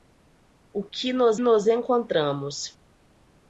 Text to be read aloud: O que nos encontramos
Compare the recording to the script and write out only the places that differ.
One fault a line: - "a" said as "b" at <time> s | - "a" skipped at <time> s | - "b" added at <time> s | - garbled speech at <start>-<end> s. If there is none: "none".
- "nos" added at 1.4 s